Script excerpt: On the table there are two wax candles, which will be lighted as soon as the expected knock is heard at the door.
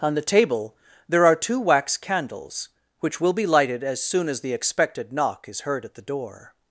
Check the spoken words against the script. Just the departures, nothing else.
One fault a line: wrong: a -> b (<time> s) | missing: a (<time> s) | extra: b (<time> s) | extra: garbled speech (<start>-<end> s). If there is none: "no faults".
no faults